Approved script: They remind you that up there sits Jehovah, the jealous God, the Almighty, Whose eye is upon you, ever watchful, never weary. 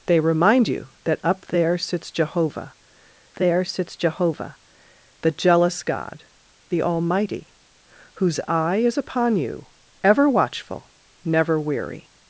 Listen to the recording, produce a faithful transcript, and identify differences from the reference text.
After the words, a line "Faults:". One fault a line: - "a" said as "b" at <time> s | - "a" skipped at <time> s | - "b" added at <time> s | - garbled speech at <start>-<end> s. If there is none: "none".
They remind you that up there sits Jehovah there sits Jehovah, the jealous God, the Almighty, Whose eye is upon you, ever watchful, never weary.
Faults:
- "there sits Jehovah" added at 3.3 s